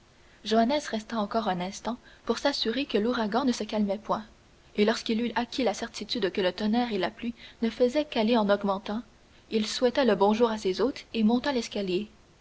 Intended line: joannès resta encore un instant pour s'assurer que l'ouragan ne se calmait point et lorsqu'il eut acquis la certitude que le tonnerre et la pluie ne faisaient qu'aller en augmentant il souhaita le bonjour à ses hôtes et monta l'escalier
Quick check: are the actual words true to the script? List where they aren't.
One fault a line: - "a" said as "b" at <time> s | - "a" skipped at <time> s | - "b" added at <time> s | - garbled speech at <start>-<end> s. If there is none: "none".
none